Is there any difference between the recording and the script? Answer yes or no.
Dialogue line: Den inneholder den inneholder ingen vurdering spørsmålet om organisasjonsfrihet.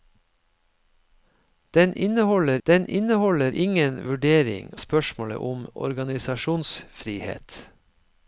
no